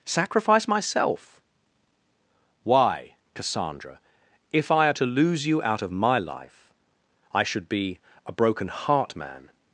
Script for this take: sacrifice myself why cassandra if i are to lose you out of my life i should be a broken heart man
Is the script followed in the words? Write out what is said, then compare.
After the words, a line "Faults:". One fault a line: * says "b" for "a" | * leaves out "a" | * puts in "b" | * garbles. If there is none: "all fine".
sacrifice myself why cassandra if i are to lose you out of my life i should be a broken heart man
Faults:
all fine